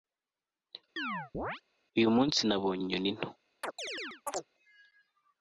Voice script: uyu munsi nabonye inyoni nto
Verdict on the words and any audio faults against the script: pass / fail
fail